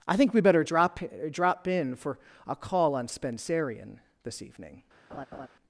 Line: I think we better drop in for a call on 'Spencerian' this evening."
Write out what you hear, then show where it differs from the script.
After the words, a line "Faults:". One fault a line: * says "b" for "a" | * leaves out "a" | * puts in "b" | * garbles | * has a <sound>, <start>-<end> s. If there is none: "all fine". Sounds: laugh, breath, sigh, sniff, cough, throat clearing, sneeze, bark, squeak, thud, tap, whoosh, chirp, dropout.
I think we better drop drop in for a call on 'Spencerian' this evening."
Faults:
* puts in "drop"
* has a laugh, 5.1-5.5 s